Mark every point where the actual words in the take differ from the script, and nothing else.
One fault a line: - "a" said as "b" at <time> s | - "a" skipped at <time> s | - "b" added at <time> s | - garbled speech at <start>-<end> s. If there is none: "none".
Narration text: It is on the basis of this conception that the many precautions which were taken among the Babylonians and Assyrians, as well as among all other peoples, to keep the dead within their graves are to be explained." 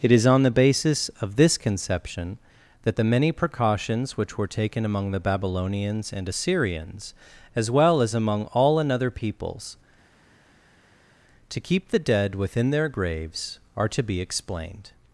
- "other" said as "another" at 8.8 s